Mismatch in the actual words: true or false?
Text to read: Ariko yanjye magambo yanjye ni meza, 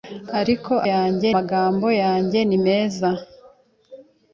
false